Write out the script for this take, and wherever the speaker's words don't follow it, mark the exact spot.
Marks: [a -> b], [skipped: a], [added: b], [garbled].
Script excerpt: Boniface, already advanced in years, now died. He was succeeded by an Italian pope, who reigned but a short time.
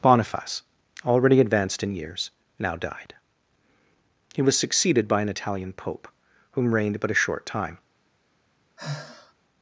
Boniface, already advanced in years, now died. He was succeeded by an Italian pope, [who -> whom] reigned but a short time.